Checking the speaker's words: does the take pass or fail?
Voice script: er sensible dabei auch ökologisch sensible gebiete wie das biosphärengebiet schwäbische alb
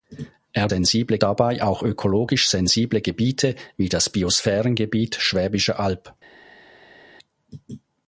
pass